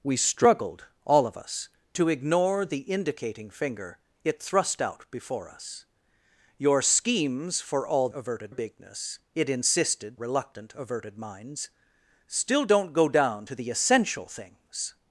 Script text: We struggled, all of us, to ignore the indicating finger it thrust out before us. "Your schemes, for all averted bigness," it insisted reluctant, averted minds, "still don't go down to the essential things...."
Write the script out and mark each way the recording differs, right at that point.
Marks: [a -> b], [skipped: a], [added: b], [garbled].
We struggled, all of us, to ignore the indicating finger it thrust out before us. "Your schemes, for all averted bigness," it insisted reluctant, averted minds, "still don't go down to the essential things...."